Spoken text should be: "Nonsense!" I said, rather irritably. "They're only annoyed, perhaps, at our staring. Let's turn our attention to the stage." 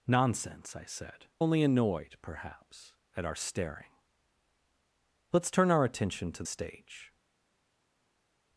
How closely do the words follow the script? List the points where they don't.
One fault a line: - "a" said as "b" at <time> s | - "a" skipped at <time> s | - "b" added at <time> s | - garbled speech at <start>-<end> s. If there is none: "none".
- "rather irritably They're" skipped at 1.3 s
- "the" skipped at 6.4 s